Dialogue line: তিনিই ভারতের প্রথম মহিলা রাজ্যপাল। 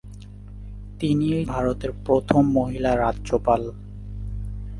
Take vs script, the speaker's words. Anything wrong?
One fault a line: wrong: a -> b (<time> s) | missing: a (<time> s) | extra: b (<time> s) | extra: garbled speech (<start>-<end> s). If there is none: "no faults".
no faults